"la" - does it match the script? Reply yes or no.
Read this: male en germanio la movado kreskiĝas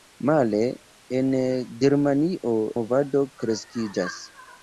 no